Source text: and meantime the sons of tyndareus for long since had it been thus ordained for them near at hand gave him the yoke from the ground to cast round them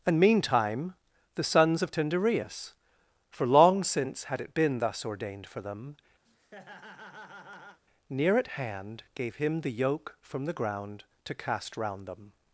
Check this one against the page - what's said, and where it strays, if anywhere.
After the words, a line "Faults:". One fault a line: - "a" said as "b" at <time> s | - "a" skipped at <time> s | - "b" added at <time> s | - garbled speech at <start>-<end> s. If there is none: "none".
and meantime the sons of tyndareus for long since had it been thus ordained for them near at hand gave him the yoke from the ground to cast round them
Faults:
none